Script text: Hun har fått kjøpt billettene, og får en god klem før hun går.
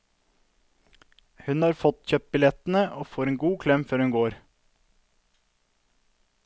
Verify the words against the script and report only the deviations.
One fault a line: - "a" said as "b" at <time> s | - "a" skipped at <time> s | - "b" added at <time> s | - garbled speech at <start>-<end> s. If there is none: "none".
none